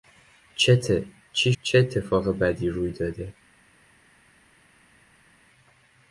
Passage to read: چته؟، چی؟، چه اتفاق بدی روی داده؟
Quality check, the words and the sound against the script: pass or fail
pass